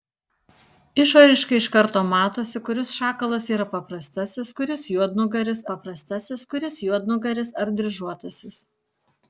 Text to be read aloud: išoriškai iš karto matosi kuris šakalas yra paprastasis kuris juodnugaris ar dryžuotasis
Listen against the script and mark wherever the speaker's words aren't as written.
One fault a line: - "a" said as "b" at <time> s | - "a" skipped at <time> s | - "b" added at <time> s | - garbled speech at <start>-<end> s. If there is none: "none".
- "paprastasis kuris juodnugaris" added at 5.7 s